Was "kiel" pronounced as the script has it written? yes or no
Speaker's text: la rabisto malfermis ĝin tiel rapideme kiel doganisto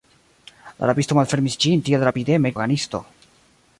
no